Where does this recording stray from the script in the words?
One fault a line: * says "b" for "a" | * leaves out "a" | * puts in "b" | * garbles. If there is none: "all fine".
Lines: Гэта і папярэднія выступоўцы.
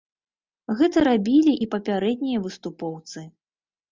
* puts in "рабілі"